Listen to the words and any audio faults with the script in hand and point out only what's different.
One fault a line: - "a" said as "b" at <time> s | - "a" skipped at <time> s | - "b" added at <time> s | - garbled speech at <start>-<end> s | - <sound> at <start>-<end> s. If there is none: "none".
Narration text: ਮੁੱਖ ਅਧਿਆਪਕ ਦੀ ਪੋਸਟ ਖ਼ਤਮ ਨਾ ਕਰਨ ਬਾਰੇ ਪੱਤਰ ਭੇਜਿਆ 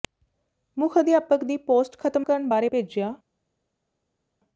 - "ਨਾ" skipped at 2.2 s
- "ਪੱਤਰ" skipped at 2.7 s